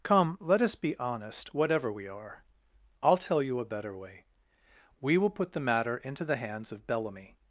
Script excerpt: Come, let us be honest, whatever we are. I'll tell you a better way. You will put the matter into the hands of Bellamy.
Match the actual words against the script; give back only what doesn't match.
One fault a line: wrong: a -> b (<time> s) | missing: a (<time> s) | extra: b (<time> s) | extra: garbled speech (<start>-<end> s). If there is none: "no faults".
wrong: You -> We (5.0 s)